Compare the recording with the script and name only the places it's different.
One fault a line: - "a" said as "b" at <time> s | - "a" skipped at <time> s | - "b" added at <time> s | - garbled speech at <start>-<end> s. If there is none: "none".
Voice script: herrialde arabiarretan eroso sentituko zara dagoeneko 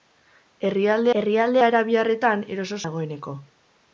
- "herrialde" added at 1.2 s
- "sentituko zara" skipped at 2.8 s